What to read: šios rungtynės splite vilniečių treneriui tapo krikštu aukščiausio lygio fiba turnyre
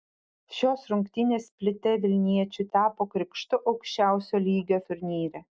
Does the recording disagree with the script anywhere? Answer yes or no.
yes